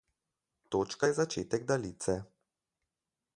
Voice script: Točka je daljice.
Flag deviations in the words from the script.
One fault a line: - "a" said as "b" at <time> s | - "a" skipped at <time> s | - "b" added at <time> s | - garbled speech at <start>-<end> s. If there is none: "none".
- "začetek" added at 1.1 s